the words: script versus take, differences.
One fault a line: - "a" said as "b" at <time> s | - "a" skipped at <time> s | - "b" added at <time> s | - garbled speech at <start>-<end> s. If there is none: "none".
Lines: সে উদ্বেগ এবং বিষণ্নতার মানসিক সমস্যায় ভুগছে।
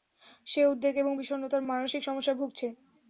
none